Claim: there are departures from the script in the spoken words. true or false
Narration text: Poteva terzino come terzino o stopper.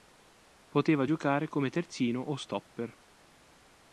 true